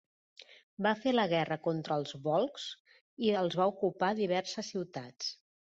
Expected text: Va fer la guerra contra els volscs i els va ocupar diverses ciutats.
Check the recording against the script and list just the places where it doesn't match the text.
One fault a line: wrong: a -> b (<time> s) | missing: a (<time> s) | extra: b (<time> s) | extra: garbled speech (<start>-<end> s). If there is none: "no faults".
no faults